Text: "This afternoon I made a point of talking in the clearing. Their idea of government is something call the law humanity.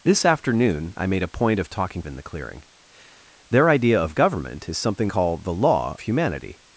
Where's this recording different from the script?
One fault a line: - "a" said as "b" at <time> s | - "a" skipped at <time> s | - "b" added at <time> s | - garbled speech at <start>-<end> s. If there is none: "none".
none